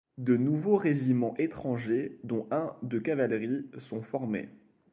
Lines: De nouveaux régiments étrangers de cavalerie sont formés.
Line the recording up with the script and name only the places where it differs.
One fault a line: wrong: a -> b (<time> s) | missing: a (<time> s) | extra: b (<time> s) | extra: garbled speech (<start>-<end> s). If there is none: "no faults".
extra: dont un (2.2 s)